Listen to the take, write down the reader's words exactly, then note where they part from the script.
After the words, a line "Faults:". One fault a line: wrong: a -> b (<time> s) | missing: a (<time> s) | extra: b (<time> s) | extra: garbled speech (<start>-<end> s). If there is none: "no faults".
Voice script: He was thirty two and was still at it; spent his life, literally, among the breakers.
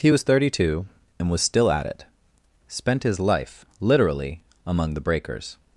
He was thirty two and was still at it; spent his life, literally, among the breakers.
Faults:
no faults